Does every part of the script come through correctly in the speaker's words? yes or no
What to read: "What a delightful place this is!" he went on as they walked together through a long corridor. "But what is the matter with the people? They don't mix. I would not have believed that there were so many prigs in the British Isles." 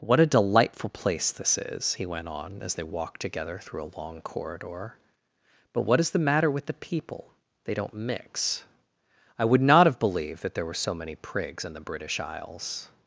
yes